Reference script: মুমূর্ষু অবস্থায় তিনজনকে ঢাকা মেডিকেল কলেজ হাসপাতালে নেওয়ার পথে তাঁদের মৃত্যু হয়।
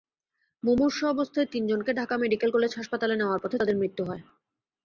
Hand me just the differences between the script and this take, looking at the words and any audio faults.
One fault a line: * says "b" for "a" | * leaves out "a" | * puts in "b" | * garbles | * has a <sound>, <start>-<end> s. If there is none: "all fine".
all fine